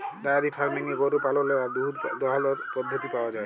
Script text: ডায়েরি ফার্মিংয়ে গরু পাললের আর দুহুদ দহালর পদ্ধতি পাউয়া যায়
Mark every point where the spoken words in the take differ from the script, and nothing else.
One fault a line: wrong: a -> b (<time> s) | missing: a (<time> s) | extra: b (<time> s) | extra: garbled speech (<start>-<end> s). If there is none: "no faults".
no faults